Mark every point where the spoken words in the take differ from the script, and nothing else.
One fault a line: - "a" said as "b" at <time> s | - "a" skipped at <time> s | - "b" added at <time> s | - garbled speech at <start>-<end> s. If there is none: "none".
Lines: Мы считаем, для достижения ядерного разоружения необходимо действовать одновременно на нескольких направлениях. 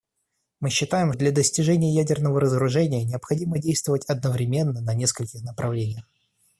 none